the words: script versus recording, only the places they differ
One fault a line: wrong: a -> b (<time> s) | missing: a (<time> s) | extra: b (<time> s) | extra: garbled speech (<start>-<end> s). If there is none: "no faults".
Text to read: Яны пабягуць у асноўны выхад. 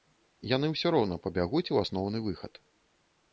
extra: ўсё роўна (0.7 s)